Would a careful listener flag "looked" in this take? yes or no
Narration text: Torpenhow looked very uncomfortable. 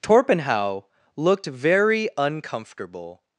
no